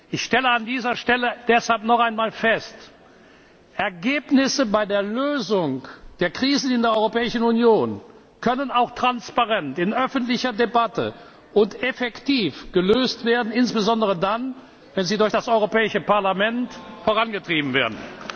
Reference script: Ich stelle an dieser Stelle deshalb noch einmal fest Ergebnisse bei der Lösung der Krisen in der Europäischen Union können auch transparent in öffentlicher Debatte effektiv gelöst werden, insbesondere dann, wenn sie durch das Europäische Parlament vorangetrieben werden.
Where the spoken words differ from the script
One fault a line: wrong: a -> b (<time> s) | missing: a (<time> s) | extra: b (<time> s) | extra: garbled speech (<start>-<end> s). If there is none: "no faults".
extra: und (11.5 s)